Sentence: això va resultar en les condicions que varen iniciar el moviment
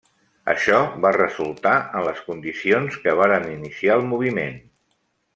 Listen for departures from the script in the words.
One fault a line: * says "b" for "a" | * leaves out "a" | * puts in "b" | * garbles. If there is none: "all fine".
all fine